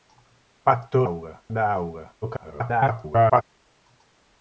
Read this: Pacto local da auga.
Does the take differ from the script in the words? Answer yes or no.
yes